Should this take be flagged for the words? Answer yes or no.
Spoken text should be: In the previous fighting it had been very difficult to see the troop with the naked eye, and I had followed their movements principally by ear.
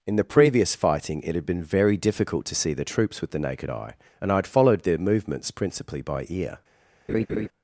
yes